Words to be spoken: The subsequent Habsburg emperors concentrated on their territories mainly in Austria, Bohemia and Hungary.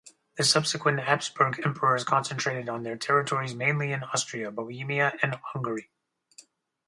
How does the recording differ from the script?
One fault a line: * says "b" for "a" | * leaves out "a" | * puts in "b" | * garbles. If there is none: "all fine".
all fine